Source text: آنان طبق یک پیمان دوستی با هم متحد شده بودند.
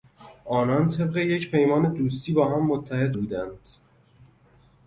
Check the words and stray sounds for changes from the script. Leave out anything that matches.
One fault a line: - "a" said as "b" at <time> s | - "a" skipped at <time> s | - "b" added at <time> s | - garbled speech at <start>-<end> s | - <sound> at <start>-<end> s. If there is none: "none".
- "شده" skipped at 3.1 s